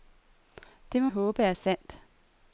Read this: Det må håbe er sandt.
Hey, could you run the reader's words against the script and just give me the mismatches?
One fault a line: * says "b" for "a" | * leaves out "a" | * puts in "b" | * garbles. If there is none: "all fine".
all fine